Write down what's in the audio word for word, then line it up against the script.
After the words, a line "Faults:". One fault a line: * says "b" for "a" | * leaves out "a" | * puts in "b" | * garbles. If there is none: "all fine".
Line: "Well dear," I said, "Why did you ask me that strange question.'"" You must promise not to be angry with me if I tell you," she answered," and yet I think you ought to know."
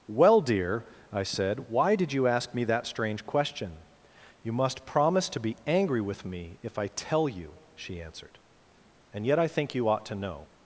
"Well dear," I said, "Why did you ask me that strange question.'"" You must promise to be angry with me if I tell you," she answered," and yet I think you ought to know."
Faults:
* leaves out "not"